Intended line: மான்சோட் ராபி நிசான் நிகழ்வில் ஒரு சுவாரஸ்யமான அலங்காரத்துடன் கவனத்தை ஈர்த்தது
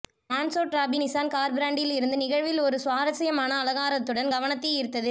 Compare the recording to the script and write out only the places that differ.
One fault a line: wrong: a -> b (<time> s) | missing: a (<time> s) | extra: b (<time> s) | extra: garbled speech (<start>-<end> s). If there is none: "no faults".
extra: கார் பிராண்டில் இருந்து (1.3 s)